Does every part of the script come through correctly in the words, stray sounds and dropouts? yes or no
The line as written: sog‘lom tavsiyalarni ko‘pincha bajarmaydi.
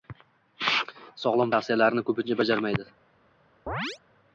no